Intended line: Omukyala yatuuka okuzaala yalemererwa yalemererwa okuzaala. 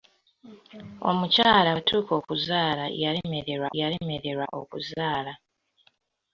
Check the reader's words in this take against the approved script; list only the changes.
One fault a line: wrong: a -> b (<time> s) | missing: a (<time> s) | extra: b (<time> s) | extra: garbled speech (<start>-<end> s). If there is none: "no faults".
no faults